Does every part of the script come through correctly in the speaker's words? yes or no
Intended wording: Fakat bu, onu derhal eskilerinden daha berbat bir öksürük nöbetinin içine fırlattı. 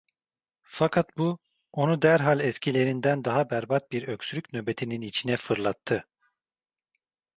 yes